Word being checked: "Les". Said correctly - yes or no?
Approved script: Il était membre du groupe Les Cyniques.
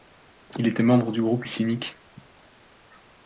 no